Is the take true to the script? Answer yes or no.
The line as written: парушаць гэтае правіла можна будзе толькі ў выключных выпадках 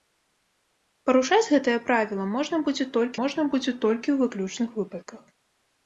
no